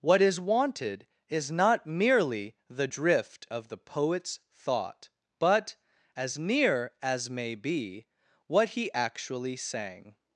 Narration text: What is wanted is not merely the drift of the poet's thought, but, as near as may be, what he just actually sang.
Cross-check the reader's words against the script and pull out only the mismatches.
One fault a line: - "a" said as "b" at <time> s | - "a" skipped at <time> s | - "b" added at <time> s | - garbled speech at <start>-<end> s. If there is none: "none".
- "just" skipped at 8.9 s